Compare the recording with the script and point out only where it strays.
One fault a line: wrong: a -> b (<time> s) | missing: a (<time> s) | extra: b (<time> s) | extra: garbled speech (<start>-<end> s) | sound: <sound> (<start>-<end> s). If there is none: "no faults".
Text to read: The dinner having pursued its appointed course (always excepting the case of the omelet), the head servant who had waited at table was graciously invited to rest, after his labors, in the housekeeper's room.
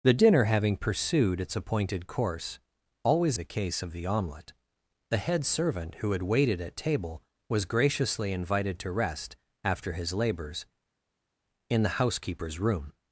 missing: excepting (3.4 s)